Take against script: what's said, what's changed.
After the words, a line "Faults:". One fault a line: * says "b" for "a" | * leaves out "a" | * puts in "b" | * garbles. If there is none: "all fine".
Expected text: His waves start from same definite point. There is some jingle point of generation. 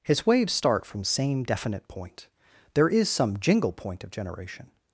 His waves start from same definite point. There is some jingle point of generation.
Faults:
all fine